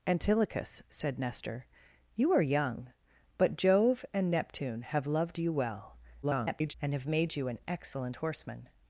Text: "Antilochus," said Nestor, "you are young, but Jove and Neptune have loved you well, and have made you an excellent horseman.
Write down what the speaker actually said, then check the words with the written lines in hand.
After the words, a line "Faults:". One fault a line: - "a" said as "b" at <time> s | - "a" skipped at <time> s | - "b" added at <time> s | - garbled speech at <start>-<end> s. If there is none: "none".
"Antilochus," said Nestor, "you are young, but Jove and Neptune have loved you well, [garbled] and have made you an excellent horseman.
Faults:
- garbled speech at 6.2-6.7 s